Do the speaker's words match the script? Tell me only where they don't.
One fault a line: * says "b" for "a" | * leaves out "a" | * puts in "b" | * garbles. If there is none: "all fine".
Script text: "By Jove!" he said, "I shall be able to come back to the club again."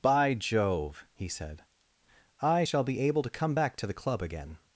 all fine